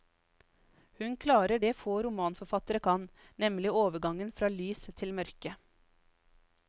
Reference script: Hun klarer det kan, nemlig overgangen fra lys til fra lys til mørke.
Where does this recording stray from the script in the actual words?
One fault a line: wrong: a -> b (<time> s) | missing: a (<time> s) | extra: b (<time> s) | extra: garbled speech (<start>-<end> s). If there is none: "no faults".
extra: få romanforfattere (1.8 s)
missing: fra lys til (5.1 s)